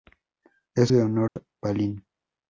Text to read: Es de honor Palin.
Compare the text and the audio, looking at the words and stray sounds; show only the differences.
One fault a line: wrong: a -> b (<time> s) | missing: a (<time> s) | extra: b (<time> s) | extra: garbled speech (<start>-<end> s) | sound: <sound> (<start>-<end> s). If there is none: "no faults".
sound: dropout (1.3-1.4 s)